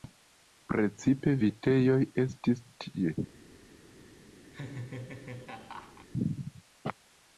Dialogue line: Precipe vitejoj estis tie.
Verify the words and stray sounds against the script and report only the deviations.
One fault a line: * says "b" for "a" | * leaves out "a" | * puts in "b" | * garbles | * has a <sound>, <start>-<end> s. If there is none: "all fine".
* has a laugh, 4.5-6.1 s